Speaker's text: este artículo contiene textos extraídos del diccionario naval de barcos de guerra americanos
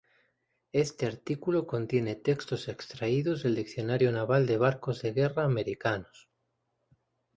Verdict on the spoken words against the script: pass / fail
pass